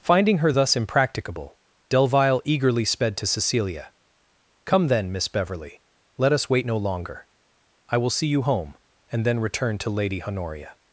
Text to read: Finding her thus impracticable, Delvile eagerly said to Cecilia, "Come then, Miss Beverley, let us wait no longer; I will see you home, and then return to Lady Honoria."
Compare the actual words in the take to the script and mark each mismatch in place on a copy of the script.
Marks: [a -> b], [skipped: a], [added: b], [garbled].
Finding her thus impracticable, Delvile eagerly [said -> sped] to Cecilia, "Come then, Miss Beverley, let us wait no longer; I will see you home, and then return to Lady Honoria."